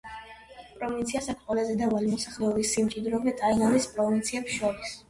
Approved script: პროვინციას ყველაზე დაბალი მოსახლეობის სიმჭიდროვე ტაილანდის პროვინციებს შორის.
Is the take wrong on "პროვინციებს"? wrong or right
right